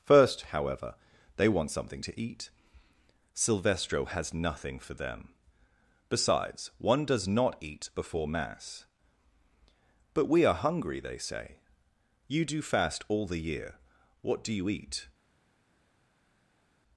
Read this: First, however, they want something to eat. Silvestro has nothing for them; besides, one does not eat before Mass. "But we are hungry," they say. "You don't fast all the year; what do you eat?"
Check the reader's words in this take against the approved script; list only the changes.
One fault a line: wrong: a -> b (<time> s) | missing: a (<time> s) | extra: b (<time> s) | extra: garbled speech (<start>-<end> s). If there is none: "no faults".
wrong: don't -> do (12.4 s)